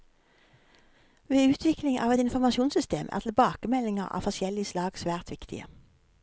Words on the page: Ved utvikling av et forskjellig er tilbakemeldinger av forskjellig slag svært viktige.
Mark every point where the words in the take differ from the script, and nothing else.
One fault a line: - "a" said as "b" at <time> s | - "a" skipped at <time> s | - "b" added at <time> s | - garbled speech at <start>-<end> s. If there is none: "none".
- "forskjellig" said as "informasjonssystem" at 2.2 s